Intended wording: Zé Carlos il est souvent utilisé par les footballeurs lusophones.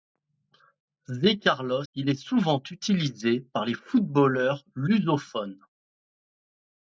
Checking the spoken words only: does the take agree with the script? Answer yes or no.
yes